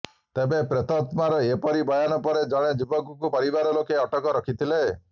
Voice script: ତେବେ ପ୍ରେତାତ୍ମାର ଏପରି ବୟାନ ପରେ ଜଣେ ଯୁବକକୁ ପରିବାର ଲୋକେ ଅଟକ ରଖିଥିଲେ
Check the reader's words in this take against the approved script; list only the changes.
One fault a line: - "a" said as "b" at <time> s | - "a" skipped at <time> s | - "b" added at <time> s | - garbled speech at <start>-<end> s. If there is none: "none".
none